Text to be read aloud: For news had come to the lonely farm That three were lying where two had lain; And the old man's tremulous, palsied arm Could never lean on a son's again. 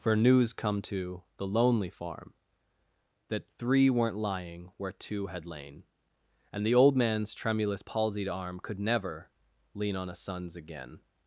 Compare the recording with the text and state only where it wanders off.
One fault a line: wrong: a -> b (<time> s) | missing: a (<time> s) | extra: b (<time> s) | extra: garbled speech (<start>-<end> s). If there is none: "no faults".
missing: had (0.5 s)
wrong: were -> weren't (3.9 s)